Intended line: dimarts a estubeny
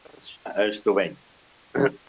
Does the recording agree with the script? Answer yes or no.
yes